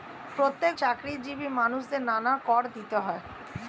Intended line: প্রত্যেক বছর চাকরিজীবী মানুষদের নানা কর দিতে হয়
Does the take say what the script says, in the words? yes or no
no